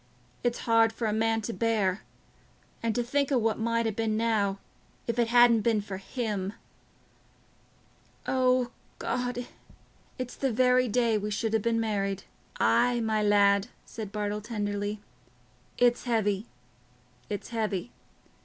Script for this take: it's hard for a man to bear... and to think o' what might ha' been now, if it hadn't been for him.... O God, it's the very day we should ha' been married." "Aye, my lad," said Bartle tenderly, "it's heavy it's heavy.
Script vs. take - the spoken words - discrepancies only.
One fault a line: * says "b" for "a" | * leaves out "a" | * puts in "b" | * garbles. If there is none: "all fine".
all fine